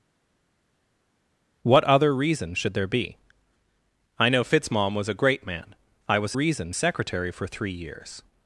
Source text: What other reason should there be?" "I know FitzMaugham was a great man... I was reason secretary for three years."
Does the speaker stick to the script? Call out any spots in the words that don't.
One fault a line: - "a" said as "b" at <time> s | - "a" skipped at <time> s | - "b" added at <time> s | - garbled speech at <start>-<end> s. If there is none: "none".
none